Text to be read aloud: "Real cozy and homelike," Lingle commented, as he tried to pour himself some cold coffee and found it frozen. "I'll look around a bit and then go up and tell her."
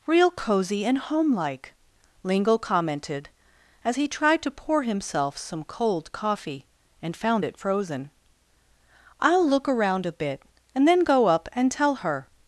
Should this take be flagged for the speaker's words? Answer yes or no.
no